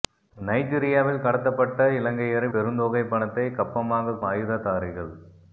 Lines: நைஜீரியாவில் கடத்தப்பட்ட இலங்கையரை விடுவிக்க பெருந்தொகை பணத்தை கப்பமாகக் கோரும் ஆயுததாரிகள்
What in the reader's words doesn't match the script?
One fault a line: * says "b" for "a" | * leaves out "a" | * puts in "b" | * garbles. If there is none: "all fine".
* leaves out "விடுவிக்க"
* leaves out "கோரும்"